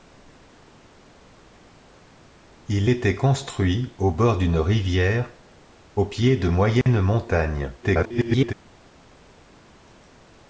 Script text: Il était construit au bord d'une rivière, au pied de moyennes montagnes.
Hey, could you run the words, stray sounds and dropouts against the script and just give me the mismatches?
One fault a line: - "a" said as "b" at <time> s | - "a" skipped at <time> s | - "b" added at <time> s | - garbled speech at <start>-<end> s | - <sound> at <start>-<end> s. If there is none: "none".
- dropout at 6.8-6.9 s
- garbled speech at 7.8-8.5 s